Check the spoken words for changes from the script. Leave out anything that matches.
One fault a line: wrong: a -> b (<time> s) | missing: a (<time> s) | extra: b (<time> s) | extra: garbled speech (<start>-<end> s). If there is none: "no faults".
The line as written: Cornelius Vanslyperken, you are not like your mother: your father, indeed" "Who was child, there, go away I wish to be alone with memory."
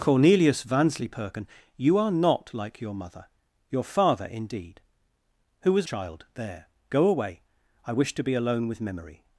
no faults